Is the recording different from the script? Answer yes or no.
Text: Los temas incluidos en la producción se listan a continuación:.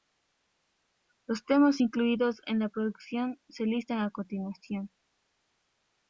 no